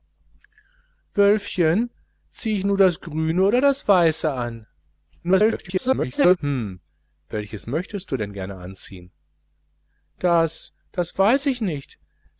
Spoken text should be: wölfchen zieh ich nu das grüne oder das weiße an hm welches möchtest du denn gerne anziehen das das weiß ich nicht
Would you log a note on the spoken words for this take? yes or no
yes